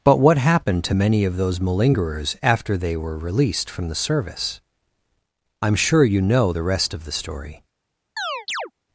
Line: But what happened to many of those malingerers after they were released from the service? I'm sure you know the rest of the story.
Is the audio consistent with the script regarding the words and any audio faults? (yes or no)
no